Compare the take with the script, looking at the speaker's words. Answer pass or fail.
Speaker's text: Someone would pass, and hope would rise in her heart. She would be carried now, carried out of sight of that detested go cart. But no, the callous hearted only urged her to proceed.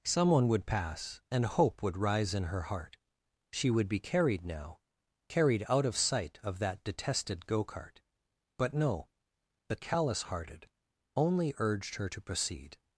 pass